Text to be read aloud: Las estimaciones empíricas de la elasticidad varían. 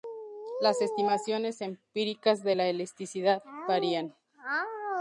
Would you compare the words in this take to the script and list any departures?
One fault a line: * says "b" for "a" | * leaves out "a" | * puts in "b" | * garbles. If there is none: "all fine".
all fine